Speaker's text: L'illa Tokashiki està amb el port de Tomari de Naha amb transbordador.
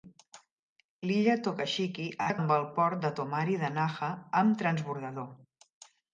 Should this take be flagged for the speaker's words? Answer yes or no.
no